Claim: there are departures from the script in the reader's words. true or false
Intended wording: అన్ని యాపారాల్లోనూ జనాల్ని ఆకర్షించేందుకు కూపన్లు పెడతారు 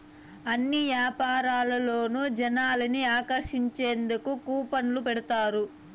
false